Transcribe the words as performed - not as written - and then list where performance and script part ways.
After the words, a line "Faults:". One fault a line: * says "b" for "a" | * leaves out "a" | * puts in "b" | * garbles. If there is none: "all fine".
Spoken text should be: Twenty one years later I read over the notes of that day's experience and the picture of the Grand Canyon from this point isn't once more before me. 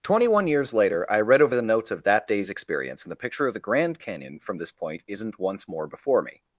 Twenty one years later I read over the notes of that day's experience and the picture of the Grand Canyon from this point isn't once more before me.
Faults:
all fine